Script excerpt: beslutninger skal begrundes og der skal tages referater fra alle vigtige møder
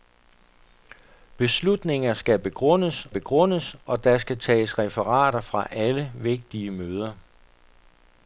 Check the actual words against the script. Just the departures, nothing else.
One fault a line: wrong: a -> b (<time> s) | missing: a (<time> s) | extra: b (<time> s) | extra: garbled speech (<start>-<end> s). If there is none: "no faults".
extra: begrundes (3.1 s)